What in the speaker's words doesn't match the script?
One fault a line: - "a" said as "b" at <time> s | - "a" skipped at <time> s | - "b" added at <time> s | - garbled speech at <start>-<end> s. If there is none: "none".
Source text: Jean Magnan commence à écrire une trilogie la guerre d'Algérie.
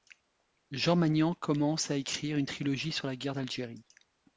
- "sur" added at 2.9 s